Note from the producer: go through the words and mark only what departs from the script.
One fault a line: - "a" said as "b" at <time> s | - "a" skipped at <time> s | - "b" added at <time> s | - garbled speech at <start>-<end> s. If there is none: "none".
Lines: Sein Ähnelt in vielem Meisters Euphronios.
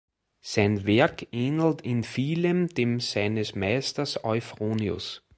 - "Werk" added at 0.9 s
- "dem seines" added at 2.7 s